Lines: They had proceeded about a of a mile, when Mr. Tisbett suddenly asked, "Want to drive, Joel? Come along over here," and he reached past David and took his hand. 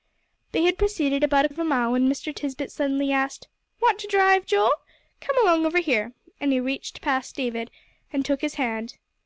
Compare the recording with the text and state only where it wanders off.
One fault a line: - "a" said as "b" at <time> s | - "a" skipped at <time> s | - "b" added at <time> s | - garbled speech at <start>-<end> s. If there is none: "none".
none